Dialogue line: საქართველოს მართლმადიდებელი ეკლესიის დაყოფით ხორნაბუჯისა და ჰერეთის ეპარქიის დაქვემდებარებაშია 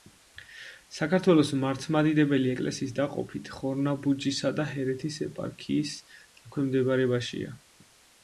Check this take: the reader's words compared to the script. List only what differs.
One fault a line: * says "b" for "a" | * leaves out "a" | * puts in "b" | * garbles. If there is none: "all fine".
all fine